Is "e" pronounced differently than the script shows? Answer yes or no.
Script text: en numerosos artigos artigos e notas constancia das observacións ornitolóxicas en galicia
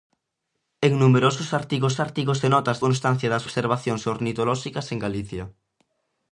no